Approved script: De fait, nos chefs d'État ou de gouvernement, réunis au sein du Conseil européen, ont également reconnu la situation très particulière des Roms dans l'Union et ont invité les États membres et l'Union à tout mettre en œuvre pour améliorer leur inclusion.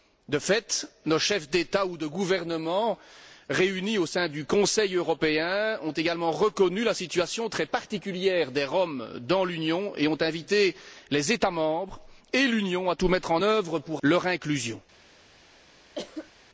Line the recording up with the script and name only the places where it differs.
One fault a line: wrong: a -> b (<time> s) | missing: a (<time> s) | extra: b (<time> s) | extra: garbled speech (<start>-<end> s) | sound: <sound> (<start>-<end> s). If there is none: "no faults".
missing: améliorer (14.0 s)
sound: cough (16.0-16.3 s)